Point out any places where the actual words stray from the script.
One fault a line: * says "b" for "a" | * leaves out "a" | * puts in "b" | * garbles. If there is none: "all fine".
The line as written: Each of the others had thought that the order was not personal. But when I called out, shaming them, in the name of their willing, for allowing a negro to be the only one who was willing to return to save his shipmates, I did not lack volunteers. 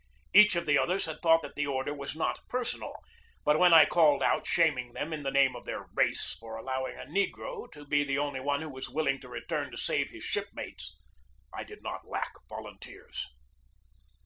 * says "race" for "willing"